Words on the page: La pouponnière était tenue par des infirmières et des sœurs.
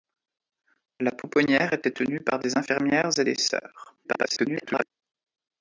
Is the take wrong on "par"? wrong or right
right